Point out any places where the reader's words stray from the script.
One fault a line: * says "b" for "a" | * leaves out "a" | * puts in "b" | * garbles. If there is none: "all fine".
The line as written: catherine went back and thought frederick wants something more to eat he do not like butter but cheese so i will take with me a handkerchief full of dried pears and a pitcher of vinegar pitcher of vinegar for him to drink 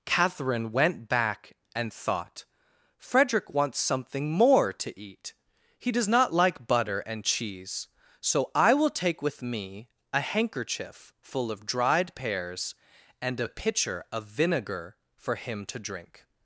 * says "does" for "do"
* says "and" for "but"
* leaves out "pitcher of vinegar"